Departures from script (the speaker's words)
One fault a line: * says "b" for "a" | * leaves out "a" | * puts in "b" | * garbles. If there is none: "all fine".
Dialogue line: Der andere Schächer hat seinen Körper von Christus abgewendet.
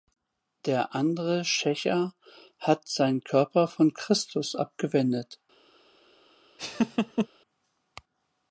all fine